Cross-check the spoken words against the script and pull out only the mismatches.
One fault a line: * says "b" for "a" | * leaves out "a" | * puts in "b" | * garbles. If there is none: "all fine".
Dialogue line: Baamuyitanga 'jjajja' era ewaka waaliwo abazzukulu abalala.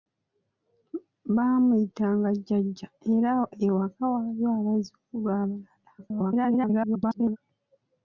* garbles